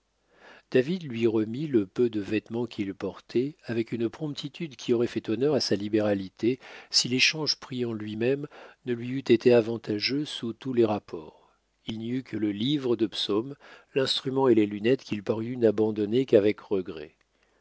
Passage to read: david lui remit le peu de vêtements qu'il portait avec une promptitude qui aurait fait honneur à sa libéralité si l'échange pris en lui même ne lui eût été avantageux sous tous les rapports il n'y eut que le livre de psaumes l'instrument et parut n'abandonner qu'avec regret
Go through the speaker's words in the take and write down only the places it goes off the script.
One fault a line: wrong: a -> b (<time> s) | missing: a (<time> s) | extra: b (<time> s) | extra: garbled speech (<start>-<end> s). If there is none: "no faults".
extra: les lunettes qu'il (14.5 s)